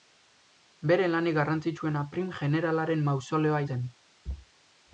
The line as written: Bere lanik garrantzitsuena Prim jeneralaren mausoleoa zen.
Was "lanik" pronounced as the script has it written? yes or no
yes